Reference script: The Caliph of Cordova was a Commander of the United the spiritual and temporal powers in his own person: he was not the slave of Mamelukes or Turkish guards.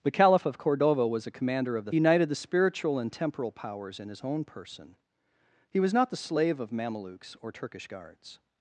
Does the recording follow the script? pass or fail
pass